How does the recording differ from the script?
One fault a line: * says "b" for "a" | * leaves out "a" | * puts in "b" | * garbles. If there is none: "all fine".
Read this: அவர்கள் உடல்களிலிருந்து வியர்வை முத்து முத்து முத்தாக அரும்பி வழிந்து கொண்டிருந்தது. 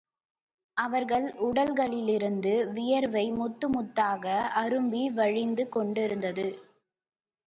* leaves out "முத்து"